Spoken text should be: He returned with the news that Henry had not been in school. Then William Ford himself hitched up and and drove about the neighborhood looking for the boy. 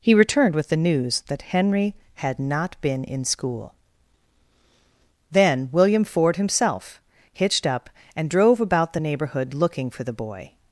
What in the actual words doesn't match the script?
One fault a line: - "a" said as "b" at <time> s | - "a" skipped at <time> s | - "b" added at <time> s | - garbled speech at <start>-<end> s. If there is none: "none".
- "and" skipped at 8.3 s